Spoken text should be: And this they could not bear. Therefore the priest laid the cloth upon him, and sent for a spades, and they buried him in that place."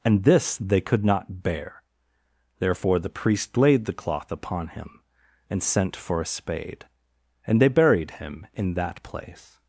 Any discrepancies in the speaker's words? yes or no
yes